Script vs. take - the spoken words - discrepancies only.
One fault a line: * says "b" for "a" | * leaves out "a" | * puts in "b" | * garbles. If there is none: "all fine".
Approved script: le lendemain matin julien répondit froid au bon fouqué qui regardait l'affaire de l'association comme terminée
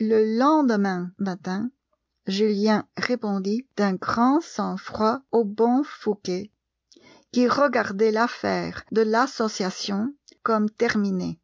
* puts in "d'un grand sang"